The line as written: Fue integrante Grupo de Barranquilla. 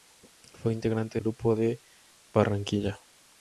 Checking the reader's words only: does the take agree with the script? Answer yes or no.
yes